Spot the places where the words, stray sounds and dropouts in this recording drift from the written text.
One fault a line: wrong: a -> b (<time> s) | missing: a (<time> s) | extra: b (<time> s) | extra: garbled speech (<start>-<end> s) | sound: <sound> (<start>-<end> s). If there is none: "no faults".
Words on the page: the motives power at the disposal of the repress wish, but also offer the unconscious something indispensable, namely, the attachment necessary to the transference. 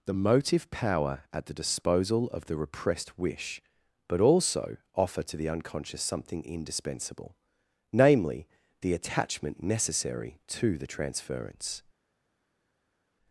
wrong: motives -> motive (0.1 s)
wrong: repress -> repressed (2.6 s)
extra: to (5.2 s)